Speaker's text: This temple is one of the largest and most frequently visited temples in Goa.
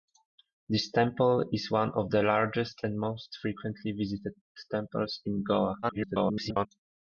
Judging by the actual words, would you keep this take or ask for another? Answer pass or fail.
fail